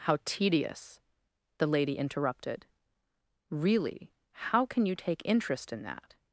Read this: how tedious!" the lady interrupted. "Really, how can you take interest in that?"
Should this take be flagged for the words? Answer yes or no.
no